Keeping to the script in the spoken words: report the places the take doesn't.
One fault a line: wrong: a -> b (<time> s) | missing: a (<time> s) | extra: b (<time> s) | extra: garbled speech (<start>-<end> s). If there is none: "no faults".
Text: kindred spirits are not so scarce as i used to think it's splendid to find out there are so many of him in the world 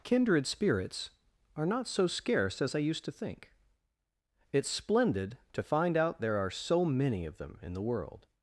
wrong: him -> them (7.4 s)